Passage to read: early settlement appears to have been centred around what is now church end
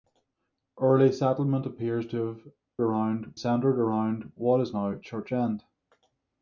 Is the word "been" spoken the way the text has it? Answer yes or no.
no